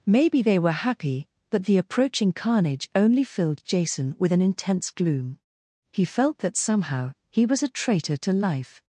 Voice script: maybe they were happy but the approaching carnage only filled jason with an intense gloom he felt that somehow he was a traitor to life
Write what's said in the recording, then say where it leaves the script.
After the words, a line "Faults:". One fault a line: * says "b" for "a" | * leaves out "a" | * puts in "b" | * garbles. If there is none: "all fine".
maybe they were happy but the approaching carnage only filled jason with an intense gloom he felt that somehow he was a traitor to life
Faults:
all fine